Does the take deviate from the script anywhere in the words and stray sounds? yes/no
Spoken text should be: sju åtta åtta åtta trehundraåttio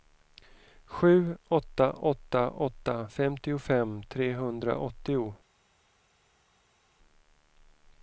yes